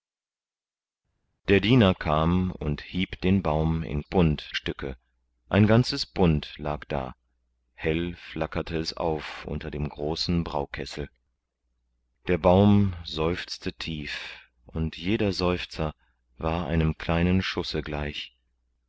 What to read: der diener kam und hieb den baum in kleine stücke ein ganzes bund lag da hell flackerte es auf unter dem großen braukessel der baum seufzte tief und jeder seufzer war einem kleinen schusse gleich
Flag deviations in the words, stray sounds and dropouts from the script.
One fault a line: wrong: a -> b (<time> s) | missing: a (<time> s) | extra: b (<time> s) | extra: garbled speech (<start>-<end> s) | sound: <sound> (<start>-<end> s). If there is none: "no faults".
wrong: kleine -> bund (4.0 s)